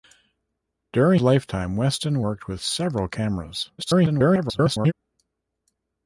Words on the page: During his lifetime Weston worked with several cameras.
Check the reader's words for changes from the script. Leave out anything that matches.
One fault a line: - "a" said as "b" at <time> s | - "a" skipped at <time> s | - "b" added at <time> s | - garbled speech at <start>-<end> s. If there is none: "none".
- "his" skipped at 1.2 s
- garbled speech at 3.8-4.9 s